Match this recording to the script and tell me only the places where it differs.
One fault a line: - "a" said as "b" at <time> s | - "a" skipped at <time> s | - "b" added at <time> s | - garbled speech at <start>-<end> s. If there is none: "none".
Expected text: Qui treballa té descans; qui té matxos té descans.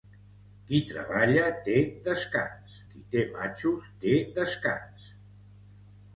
none